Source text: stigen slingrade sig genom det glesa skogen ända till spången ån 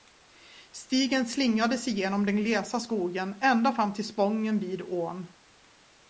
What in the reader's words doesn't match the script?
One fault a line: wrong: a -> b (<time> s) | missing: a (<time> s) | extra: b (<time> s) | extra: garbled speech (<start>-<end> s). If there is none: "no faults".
wrong: det -> den (2.2 s)
extra: fram (3.7 s)
extra: vid (4.6 s)